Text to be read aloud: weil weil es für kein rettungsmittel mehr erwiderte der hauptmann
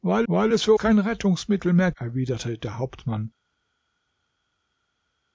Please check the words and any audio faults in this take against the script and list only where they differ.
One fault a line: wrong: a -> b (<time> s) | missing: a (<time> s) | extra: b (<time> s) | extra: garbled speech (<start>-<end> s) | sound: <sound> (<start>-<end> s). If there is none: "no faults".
no faults